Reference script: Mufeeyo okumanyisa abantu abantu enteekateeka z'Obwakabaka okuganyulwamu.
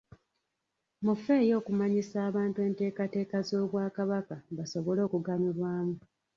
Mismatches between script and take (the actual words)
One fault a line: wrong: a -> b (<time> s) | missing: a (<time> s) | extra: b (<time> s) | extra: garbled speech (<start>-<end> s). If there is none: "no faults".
missing: abantu (2.6 s)
extra: basobole (4.6 s)